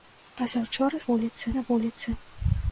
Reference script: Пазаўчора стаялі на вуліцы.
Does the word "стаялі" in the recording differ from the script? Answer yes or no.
yes